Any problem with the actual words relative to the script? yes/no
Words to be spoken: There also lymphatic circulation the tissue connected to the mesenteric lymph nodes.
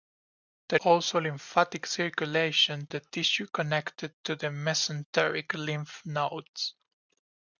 no